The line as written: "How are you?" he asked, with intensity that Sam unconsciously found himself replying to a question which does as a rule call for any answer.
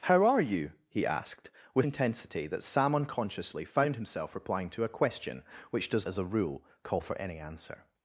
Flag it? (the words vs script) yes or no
no